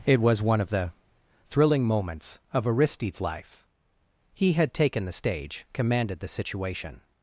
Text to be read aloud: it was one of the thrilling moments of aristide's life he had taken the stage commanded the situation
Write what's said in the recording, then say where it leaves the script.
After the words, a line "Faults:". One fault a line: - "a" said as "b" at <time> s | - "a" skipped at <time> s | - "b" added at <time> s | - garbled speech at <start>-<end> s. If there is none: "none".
it was one of the thrilling moments of aristide's life he had taken the stage commanded the situation
Faults:
none